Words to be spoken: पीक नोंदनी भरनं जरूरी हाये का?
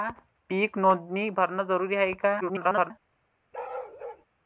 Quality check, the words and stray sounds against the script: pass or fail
fail